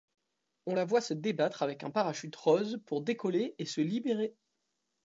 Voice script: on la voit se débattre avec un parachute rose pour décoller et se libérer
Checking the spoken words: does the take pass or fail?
pass